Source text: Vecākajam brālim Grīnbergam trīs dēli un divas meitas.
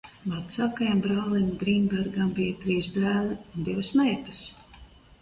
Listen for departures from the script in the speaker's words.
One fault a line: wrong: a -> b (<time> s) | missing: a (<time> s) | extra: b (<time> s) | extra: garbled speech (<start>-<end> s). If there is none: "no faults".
extra: bija (2.4 s)